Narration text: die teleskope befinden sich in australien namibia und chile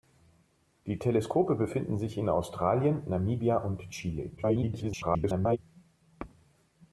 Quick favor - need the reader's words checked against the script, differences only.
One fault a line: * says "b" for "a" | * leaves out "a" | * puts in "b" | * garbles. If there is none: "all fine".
* garbles